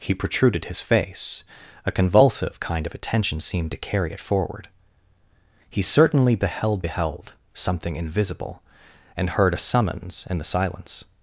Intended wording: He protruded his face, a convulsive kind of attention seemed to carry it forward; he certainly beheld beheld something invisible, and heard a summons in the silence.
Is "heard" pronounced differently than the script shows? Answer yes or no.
no